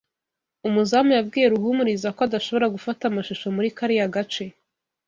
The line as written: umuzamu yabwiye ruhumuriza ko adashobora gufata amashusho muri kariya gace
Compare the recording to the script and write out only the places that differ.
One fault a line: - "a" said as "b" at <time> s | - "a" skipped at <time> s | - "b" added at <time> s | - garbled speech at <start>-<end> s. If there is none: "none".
none